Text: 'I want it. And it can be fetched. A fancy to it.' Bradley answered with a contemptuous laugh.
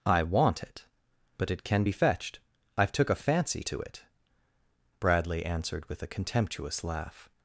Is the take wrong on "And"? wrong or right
wrong